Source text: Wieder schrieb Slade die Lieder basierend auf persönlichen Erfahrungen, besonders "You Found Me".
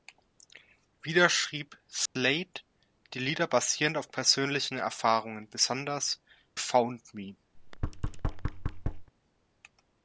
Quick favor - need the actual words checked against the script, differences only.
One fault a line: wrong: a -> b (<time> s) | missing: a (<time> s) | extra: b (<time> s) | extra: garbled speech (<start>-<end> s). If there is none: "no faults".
missing: You (6.2 s)